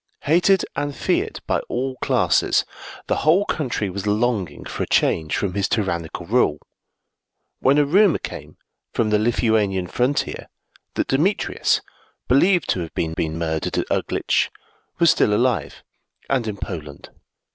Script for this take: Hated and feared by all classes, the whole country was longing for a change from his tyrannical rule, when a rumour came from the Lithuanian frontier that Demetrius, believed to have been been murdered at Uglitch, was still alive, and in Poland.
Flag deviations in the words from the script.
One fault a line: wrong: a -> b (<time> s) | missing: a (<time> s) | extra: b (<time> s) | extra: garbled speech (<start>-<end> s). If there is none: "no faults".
no faults